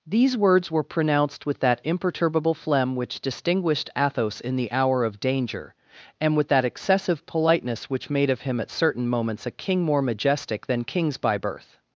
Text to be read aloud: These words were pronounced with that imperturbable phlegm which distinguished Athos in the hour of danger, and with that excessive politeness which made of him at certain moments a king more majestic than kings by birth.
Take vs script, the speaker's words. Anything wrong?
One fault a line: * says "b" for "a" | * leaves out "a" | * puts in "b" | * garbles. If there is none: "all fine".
all fine